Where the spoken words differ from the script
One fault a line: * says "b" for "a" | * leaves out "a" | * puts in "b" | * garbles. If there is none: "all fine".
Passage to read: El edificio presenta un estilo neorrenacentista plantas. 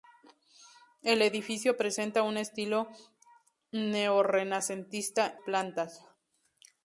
all fine